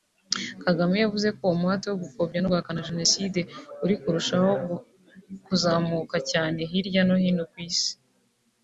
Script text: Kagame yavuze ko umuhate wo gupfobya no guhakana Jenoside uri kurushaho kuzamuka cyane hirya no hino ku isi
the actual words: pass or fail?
pass